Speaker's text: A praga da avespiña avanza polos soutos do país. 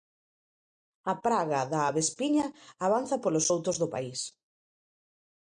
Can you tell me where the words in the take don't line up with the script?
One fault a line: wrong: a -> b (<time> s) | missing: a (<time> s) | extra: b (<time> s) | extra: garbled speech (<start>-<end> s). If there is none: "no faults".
no faults